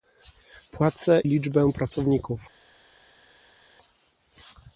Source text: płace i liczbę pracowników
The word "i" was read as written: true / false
false